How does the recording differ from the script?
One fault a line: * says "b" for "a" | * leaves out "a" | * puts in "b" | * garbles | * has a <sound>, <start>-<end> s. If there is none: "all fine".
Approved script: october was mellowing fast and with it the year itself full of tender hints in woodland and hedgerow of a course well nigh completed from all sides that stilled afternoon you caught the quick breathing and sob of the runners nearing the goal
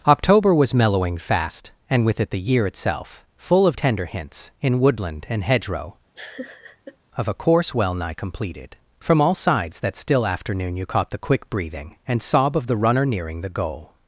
* has a laugh, 6.1-7.0 s
* says "still" for "stilled"
* says "runner" for "runners"